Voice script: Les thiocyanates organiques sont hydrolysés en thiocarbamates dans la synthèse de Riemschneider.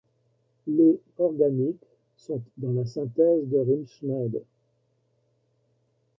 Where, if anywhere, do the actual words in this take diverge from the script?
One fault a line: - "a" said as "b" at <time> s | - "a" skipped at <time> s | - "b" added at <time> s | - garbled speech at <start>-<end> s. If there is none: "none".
- "thiocyanates" skipped at 1.0 s
- "hydrolysés en thiocarbamates" skipped at 2.4 s